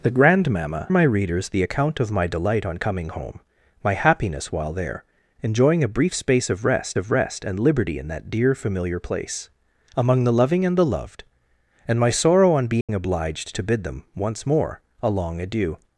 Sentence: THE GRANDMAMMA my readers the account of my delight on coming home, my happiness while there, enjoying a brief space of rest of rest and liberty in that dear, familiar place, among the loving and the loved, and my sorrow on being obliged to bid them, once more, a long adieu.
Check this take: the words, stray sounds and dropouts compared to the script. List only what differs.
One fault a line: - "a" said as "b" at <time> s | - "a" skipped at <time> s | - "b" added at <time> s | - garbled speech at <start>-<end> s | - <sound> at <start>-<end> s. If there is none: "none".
- dropout at 12.8-12.9 s